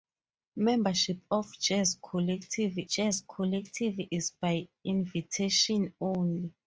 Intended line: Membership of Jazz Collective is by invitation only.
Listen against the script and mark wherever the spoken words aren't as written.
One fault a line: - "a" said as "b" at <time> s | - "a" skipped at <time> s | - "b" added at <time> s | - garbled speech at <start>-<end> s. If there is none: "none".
- "Jazz Collective" added at 2.9 s